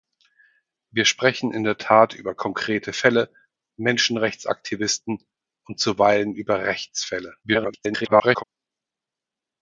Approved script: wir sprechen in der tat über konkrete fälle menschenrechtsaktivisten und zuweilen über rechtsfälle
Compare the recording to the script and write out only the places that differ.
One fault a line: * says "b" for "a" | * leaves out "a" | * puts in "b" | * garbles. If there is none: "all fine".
* garbles